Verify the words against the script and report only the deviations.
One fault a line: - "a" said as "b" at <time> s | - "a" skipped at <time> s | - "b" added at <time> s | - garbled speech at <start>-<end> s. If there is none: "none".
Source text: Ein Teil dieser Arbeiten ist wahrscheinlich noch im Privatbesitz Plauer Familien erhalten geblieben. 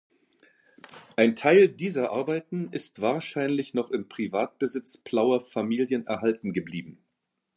none